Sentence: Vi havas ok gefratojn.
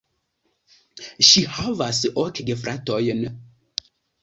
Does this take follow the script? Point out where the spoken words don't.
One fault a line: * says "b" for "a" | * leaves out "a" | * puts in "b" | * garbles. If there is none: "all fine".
* says "Ŝi" for "Vi"